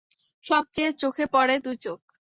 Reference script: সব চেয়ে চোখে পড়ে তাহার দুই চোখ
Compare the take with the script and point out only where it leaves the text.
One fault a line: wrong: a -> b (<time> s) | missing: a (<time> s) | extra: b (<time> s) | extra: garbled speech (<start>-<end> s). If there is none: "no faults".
missing: তাহার (1.6 s)